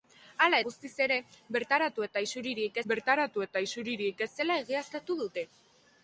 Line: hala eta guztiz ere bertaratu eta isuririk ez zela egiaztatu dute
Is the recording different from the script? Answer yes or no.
yes